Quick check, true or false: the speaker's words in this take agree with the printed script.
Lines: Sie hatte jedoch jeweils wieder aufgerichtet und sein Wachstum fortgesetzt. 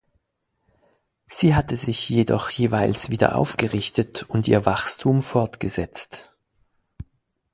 false